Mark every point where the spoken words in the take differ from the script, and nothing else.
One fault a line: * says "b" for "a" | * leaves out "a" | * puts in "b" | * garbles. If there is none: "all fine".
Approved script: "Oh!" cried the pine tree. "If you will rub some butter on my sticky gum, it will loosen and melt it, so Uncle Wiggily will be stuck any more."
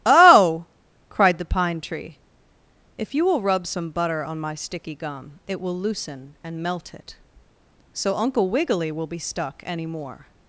all fine